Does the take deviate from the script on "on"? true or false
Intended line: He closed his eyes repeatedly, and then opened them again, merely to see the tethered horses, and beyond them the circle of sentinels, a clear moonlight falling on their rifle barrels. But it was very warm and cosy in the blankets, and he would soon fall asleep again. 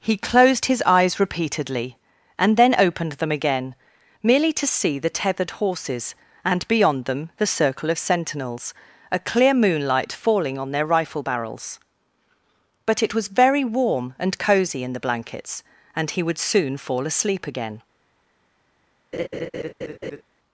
false